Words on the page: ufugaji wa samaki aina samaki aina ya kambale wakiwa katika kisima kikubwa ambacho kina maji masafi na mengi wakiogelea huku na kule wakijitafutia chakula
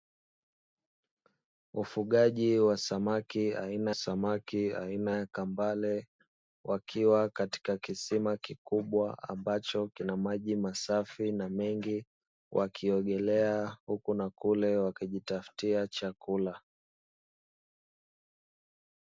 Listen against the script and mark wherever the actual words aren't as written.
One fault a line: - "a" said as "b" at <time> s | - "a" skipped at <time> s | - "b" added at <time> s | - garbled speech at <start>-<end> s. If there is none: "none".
none